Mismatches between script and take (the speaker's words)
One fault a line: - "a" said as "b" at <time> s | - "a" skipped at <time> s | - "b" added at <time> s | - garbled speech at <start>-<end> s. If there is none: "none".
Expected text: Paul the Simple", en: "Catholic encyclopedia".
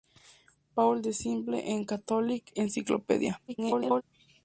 - garbled speech at 3.5-4.0 s